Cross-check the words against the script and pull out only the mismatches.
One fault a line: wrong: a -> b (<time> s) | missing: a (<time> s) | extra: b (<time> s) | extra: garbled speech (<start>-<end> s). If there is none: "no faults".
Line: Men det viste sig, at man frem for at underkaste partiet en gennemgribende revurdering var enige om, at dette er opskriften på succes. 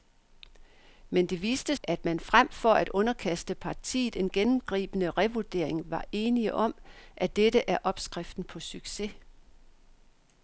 missing: sig (1.8 s)